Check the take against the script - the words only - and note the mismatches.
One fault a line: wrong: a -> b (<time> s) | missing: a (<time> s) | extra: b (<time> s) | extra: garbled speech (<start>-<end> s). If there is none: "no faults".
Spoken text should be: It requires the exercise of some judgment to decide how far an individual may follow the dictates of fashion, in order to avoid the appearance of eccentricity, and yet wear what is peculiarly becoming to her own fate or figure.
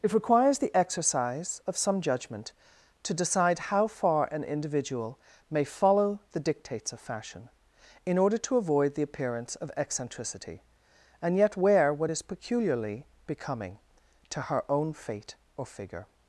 no faults